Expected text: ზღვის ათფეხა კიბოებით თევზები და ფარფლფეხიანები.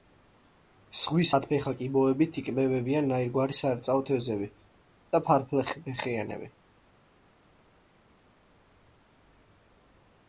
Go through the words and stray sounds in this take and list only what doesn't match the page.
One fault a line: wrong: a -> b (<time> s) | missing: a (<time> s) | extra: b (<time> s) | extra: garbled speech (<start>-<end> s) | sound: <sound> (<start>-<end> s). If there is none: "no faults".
extra: იკვებებიან ნაირგვარი სარეწაო (2.4 s)